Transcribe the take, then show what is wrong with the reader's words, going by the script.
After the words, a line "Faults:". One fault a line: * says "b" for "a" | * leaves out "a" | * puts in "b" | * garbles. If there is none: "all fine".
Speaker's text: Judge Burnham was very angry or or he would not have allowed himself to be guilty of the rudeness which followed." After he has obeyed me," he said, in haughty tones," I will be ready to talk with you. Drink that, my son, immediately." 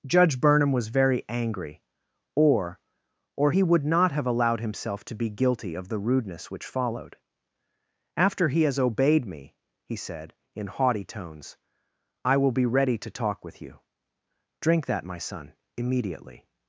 Judge Burnham was very angry or or he would not have allowed himself to be guilty of the rudeness which followed." After he has obeyed me," he said, in haughty tones," I will be ready to talk with you. Drink that, my son, immediately."
Faults:
all fine